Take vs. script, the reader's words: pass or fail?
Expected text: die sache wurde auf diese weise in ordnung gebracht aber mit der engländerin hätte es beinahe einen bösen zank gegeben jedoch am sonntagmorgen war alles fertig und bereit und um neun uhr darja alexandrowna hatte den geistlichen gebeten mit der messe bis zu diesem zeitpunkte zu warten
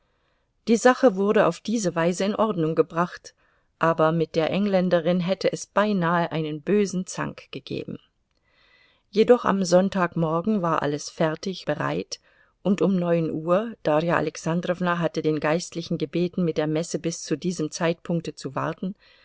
fail